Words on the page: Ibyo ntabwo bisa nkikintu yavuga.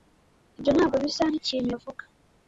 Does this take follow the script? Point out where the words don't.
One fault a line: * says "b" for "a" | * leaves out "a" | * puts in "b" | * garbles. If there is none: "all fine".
all fine